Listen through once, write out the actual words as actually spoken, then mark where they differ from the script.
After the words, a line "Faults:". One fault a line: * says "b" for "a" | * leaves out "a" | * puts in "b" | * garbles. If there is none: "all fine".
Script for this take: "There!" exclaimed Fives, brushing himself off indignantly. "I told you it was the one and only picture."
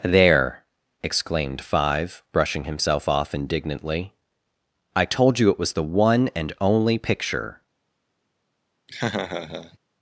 "There!" exclaimed Five, brushing himself off indignantly. "I told you it was the one and only picture."
Faults:
* says "Five" for "Fives"